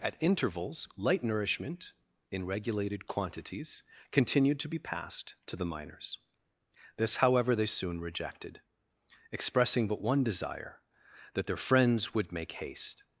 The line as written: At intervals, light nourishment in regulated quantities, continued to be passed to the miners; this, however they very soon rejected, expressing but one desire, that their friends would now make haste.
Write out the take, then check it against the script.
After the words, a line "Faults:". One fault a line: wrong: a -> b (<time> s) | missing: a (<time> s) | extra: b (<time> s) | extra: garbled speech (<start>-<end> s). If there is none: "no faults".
At intervals, light nourishment in regulated quantities, continued to be passed to the miners; this, however they soon rejected, expressing but one desire, that their friends would make haste.
Faults:
missing: very (7.7 s)
missing: now (12.3 s)